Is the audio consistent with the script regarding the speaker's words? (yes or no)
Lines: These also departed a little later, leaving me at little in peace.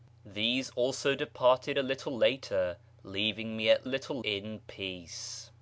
yes